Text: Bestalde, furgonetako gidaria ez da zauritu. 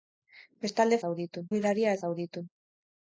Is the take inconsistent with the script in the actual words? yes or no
yes